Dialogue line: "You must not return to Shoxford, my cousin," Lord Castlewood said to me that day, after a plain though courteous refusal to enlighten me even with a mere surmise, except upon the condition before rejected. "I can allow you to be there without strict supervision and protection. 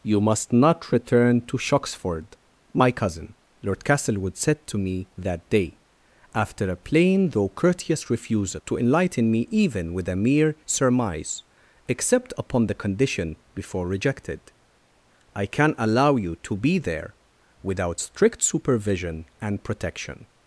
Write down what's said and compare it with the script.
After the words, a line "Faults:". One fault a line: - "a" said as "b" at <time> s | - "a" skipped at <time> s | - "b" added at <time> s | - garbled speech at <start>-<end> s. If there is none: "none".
"You must not return to Shoxford, my cousin," Lord Castlewood said to me that day, after a plain though courteous refusal to enlighten me even with a mere surmise, except upon the condition before rejected. "I can allow you to be there without strict supervision and protection.
Faults:
none